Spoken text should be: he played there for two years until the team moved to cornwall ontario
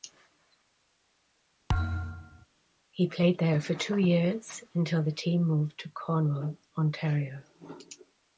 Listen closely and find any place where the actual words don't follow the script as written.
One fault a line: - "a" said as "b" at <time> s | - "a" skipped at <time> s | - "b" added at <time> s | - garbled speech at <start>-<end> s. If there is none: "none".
none